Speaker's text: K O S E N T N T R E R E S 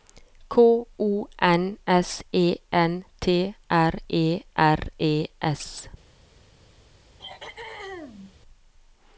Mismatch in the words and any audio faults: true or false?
true